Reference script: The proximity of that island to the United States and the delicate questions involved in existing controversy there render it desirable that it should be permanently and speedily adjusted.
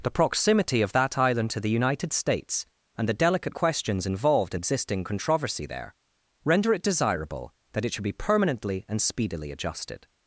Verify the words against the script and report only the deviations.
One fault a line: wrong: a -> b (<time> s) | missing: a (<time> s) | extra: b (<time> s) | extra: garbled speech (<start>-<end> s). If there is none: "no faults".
no faults